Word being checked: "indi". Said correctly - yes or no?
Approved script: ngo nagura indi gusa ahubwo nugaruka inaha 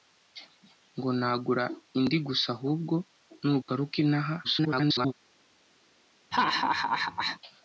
yes